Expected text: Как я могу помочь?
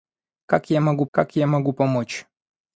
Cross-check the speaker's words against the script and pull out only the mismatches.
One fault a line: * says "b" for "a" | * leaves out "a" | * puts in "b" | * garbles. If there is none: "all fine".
* puts in "как я могу"